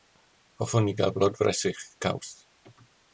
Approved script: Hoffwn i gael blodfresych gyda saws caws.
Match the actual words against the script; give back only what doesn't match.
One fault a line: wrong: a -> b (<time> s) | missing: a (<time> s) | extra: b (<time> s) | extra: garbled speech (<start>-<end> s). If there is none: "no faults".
missing: gyda saws (1.8 s)